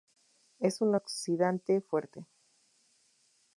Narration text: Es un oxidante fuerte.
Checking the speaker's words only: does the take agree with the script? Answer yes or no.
yes